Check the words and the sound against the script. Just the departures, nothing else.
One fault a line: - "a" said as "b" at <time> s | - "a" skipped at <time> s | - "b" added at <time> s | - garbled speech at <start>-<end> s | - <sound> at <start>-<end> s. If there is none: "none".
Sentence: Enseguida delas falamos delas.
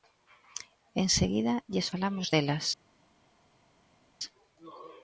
- "delas" said as "lles" at 1.7 s